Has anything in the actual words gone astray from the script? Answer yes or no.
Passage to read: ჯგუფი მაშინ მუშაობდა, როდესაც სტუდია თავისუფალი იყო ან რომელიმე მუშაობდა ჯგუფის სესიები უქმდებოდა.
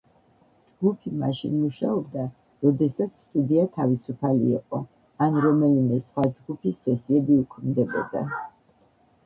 yes